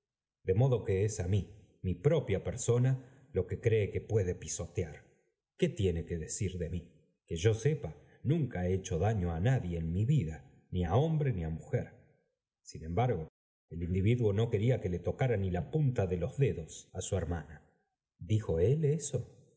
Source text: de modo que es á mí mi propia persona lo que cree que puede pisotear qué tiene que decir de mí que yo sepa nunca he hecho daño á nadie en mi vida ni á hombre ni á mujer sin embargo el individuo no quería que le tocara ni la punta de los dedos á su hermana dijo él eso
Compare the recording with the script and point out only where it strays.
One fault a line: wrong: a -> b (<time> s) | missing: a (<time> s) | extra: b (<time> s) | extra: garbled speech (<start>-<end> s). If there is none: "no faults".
no faults